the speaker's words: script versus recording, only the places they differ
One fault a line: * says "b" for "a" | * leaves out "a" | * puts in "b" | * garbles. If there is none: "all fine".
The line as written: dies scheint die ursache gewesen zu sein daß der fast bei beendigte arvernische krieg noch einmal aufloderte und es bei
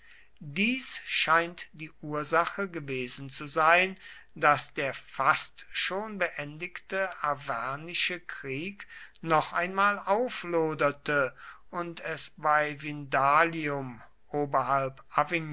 * says "schon" for "bei"